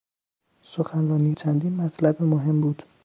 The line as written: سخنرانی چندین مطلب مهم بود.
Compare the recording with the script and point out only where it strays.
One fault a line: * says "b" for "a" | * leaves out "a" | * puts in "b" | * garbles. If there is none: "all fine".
all fine